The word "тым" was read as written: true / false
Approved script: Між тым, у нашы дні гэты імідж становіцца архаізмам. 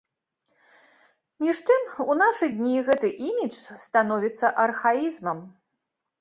true